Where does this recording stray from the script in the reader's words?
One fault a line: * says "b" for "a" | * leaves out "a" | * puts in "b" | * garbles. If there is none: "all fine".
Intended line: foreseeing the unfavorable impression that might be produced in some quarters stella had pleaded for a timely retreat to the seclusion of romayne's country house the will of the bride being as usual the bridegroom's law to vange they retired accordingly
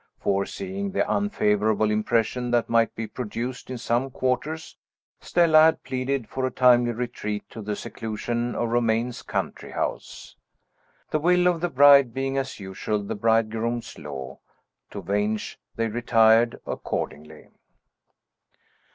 all fine